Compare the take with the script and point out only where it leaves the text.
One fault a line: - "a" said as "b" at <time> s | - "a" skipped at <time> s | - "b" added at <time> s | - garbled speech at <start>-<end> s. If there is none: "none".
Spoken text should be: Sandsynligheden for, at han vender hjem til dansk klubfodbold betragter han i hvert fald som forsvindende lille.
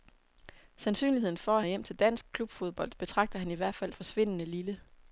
- "han vender" skipped at 1.6 s
- "som" skipped at 3.9 s